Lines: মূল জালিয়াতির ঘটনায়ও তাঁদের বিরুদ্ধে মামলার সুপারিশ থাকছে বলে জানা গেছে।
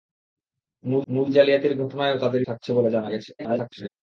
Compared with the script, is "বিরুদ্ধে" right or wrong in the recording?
wrong